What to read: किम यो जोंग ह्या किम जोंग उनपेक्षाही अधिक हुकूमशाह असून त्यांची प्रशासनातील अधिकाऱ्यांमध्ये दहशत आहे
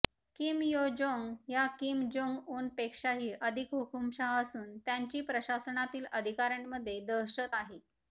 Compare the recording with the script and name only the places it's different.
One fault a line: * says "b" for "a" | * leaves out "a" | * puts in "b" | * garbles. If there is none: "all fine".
all fine